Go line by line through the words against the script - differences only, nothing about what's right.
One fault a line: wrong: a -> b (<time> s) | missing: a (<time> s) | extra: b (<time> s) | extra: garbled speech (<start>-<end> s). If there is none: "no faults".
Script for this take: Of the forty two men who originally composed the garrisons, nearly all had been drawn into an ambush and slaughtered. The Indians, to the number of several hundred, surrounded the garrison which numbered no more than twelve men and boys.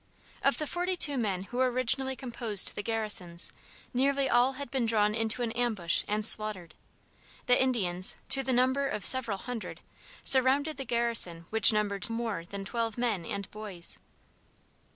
missing: no (12.1 s)